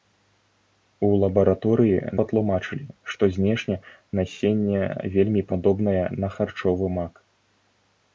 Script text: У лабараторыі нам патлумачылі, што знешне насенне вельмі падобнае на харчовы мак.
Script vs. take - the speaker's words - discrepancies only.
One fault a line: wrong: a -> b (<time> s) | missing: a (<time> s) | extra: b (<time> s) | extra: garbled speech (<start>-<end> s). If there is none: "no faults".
missing: нам (2.0 s)